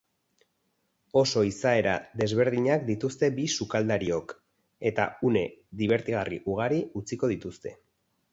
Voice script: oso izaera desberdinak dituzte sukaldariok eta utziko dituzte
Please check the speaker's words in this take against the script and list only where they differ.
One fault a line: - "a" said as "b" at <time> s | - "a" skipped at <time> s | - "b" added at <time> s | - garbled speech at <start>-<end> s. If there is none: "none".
- "bi" added at 3.4 s
- "une dibertigarri ugari" added at 5.3 s